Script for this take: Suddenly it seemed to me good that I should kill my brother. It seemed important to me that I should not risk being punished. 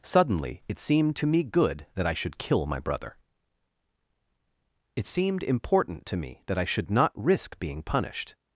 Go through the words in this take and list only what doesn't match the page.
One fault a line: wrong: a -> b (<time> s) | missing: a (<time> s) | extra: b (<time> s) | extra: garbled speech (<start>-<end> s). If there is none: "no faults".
no faults